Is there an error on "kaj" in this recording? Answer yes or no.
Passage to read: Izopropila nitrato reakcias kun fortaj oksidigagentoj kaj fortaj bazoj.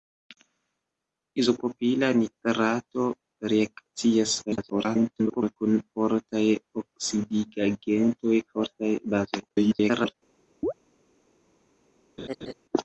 yes